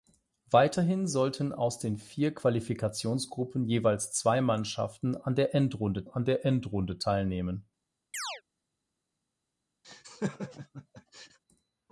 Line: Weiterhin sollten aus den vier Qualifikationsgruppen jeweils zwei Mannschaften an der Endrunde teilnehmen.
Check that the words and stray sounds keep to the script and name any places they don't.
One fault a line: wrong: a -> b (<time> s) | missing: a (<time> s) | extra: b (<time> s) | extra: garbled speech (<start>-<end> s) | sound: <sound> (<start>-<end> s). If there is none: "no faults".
extra: an der Endrunde (6.0 s)
sound: chirp (8.1-8.4 s)
sound: laugh (9.8-11.4 s)